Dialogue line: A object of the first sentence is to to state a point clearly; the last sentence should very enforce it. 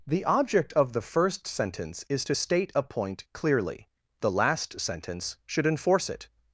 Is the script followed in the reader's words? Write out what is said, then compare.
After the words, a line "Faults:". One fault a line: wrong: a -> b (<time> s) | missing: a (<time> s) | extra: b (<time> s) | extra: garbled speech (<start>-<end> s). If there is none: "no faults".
The object of the first sentence is to state a point clearly; the last sentence should enforce it.
Faults:
wrong: A -> The (0.1 s)
missing: to (2.3 s)
missing: very (5.7 s)